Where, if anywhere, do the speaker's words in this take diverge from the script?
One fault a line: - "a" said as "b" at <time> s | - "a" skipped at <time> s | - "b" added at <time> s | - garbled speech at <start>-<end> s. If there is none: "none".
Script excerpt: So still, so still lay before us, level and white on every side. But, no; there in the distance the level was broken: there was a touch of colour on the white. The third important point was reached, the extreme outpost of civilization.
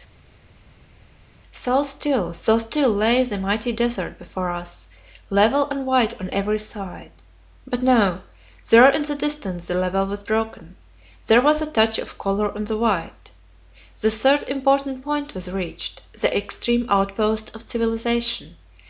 - "the mighty desert" added at 3.2 s